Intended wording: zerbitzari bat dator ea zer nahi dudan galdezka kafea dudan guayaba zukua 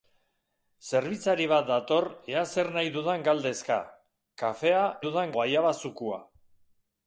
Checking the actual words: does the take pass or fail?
pass